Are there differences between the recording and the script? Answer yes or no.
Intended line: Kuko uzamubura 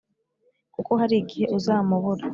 yes